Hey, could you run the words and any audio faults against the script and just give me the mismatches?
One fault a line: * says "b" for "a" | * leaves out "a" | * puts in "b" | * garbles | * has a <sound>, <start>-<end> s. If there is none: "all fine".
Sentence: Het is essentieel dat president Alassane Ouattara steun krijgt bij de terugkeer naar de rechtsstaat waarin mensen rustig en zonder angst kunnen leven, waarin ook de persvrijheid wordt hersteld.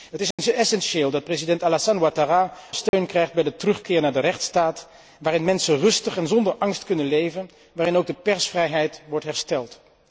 * has a dropout, 0.3-0.4 s
* has a dropout, 2.9-2.9 s